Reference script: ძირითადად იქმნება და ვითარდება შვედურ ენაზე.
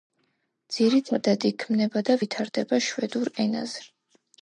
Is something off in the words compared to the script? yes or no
no